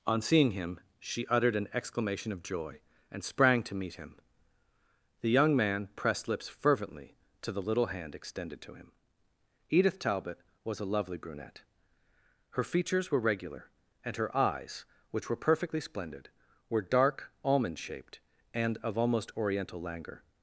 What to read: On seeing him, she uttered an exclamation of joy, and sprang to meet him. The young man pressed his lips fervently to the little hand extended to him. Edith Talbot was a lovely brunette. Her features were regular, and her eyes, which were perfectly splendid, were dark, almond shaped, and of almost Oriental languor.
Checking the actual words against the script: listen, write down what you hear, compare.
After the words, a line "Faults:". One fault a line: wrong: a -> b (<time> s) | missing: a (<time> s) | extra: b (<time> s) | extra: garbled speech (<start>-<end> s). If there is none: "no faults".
On seeing him, she uttered an exclamation of joy, and sprang to meet him. The young man pressed lips fervently to the little hand extended to him. Edith Talbot was a lovely brunette. Her features were regular, and her eyes, which were perfectly splendid, were dark, almond shaped, and of almost Oriental languor.
Faults:
missing: his (6.3 s)